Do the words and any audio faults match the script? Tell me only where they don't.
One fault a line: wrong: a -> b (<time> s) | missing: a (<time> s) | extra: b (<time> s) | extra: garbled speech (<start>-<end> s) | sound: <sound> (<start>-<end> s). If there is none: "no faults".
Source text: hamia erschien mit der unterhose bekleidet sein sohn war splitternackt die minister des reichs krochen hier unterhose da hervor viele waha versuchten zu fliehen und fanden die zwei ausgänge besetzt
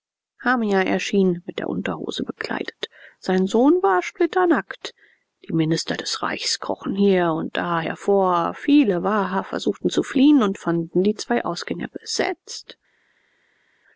wrong: unterhose -> und (7.3 s)